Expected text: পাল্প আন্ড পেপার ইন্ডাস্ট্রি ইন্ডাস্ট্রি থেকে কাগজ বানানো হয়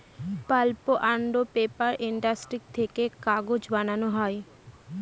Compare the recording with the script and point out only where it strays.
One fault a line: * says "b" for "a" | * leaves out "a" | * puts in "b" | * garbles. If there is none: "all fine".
* leaves out "ইন্ডাস্ট্রি"